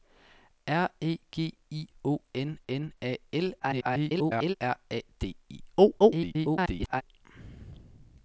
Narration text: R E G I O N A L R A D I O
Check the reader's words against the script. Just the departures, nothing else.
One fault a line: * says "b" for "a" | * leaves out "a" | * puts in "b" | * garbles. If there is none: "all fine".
* puts in "N"
* garbles
* garbles